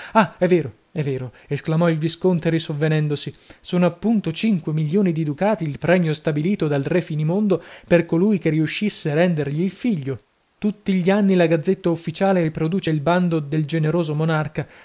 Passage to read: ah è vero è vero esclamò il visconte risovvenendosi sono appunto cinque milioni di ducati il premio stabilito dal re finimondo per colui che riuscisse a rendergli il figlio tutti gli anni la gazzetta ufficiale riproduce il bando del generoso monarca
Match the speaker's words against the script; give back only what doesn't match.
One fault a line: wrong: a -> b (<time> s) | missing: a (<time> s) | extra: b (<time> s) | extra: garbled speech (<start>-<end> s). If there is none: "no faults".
no faults